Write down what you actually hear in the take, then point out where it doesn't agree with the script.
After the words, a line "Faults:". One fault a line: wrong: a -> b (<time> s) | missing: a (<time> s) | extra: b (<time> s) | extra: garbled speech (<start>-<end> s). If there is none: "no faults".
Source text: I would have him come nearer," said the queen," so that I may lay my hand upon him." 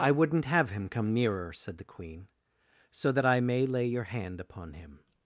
I wouldn't have him come nearer," said the queen," so that I may lay your hand upon him."
Faults:
wrong: would -> wouldn't (0.1 s)
wrong: my -> your (3.9 s)